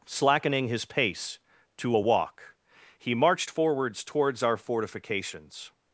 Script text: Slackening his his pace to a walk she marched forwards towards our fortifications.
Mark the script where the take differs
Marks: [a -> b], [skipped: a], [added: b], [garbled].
Slackening his [skipped: his] pace to a walk [she -> he] marched forwards towards our fortifications.